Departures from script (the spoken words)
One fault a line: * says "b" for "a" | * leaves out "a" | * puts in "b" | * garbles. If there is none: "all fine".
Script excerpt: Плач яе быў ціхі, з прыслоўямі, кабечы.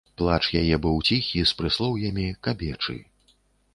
all fine